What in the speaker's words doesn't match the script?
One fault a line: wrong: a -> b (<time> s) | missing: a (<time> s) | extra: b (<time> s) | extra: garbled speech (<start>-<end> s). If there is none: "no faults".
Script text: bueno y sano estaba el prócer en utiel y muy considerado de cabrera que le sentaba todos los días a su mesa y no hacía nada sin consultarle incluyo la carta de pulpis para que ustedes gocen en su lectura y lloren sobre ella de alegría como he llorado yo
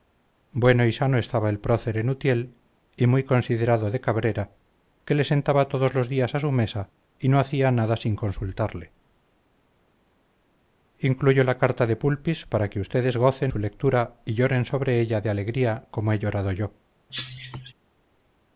missing: en (13.5 s)